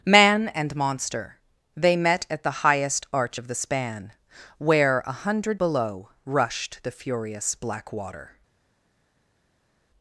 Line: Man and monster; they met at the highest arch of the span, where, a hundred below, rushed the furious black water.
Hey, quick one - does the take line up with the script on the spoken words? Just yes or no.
yes